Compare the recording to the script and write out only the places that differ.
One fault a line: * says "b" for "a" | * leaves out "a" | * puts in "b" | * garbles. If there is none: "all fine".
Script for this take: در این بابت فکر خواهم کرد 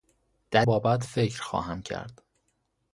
* leaves out "این"